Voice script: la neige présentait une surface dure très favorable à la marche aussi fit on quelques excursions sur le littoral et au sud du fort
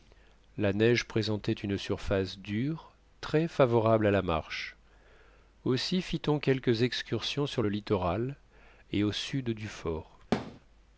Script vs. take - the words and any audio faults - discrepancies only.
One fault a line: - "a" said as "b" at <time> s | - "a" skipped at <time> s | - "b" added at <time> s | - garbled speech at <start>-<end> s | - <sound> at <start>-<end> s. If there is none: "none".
- thud at 10.3-10.6 s